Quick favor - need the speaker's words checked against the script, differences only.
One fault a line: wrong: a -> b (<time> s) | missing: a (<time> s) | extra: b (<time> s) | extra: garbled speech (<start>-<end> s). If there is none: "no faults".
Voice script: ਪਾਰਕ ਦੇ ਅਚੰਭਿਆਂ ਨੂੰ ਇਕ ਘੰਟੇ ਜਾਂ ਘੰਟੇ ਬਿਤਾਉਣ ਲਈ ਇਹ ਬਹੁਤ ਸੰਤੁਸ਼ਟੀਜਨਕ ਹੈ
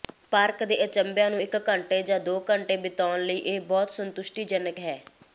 extra: ਦੋ (2.2 s)